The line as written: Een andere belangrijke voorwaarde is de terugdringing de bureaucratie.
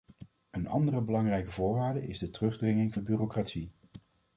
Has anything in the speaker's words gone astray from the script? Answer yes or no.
no